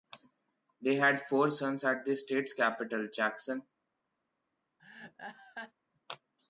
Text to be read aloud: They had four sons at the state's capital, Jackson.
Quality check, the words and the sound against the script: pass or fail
fail